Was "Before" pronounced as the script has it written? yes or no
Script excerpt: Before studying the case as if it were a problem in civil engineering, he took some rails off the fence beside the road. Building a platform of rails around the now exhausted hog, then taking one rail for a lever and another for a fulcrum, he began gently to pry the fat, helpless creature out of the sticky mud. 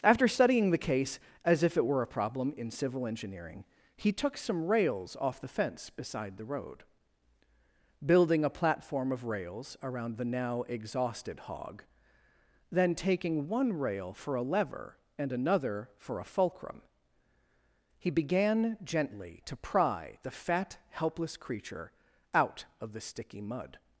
no